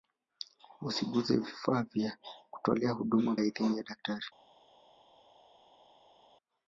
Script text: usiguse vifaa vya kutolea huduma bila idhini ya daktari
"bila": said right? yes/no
no